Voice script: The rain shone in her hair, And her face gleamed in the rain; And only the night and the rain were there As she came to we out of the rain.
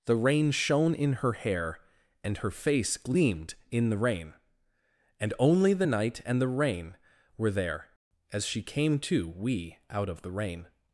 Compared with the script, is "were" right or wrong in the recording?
right